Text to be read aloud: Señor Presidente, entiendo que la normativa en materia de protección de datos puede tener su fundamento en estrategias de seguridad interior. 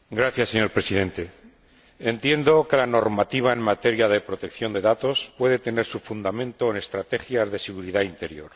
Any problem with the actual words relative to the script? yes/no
no